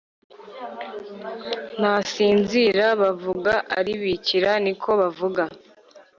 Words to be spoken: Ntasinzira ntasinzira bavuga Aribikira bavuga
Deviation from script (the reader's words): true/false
true